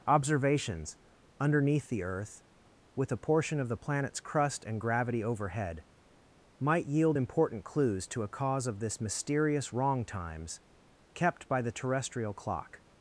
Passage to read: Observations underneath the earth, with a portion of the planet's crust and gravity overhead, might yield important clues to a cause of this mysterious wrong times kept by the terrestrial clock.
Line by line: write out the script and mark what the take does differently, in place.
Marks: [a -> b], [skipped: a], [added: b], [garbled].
Observations underneath the earth, with a portion of the planet's crust and gravity overhead, might yield important clues to a cause of this mysterious wrong times kept by the terrestrial clock.